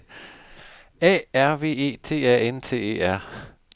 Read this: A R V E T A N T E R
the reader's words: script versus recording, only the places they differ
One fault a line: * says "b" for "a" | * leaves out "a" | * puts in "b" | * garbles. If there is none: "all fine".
all fine